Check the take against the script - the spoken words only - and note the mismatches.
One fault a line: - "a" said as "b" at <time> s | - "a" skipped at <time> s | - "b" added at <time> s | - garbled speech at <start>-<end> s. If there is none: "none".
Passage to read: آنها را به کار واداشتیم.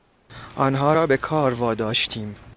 none